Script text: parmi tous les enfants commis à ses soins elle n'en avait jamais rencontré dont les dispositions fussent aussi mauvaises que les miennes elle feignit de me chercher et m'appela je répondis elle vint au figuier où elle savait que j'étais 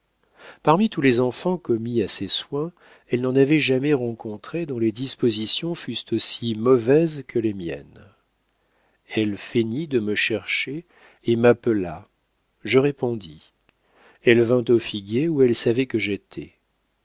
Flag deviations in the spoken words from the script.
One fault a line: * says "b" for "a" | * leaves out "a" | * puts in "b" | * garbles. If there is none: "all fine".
all fine